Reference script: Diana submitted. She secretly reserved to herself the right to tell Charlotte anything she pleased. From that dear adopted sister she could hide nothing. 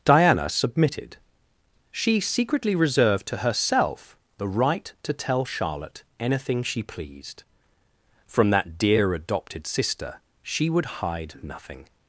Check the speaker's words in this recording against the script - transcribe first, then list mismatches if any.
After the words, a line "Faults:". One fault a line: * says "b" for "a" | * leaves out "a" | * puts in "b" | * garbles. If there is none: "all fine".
Diana submitted. She secretly reserved to herself the right to tell Charlotte anything she pleased. From that dear adopted sister she would hide nothing.
Faults:
* says "would" for "could"